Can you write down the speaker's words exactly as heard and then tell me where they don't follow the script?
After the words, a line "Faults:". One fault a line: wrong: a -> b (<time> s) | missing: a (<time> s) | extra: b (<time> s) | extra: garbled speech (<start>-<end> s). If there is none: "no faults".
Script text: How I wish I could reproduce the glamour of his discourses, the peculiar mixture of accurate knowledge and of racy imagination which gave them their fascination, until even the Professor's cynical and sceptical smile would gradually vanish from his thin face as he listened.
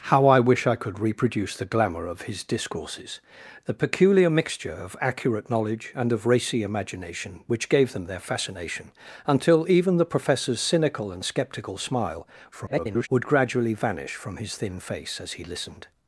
How I wish I could reproduce the glamour of his discourses, the peculiar mixture of accurate knowledge and of racy imagination which gave them their fascination, until even the Professor's cynical and sceptical smile [garbled] would gradually vanish from his thin face as he listened.
Faults:
extra: garbled speech (12.5-13.1 s)